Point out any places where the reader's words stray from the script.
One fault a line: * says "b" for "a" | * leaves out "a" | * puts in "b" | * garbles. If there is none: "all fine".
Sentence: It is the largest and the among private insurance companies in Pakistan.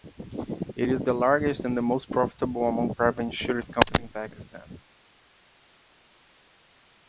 * puts in "most profitable"